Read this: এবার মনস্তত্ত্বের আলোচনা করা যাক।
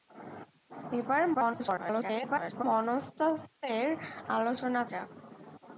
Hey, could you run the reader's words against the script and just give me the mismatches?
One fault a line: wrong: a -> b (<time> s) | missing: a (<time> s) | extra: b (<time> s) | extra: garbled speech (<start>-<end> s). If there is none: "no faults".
extra: garbled speech (1.3-2.6 s)
missing: করা (4.8 s)